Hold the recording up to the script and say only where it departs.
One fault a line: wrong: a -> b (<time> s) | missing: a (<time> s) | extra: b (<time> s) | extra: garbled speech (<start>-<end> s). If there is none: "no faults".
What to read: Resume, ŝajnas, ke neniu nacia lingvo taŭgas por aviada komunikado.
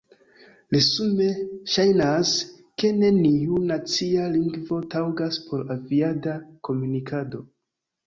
no faults